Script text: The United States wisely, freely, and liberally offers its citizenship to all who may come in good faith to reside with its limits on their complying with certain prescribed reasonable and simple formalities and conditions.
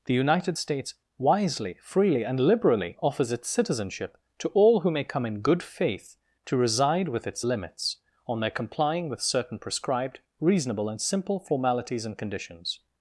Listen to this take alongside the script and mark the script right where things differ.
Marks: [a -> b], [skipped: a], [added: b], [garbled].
The United States wisely, freely, and liberally offers its citizenship to all who may come in good faith to reside with its limits on their complying with certain prescribed reasonable and simple formalities and conditions.